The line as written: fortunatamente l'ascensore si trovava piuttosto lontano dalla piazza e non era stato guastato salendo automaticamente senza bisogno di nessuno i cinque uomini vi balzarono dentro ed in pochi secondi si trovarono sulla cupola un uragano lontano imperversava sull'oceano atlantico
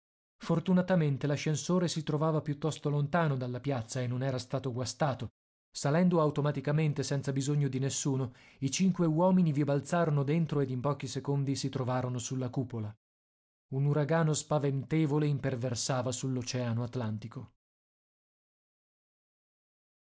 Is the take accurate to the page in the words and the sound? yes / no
no